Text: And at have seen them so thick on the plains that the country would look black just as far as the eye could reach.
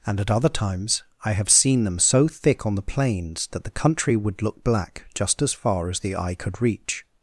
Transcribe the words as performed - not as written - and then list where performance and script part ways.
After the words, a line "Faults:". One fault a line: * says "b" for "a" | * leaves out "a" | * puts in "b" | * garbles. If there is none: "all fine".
And at other times I have seen them so thick on the plains that the country would look black just as far as the eye could reach.
Faults:
* puts in "other times I"